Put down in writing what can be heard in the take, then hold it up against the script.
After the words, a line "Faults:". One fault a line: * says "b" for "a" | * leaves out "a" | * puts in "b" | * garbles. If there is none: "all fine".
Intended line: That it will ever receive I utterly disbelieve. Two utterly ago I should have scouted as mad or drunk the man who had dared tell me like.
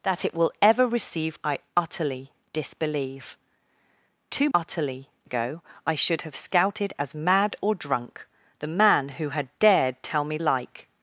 That it will ever receive I utterly disbelieve. Two utterly ago I should have scouted as mad or drunk the man who had dared tell me like.
Faults:
all fine